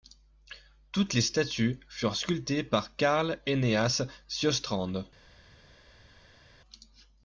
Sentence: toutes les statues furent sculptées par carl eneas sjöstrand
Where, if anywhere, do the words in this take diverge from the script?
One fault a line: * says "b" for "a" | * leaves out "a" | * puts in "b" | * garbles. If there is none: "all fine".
all fine